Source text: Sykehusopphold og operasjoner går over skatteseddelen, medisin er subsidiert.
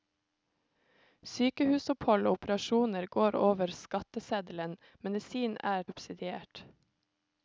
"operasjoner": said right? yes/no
yes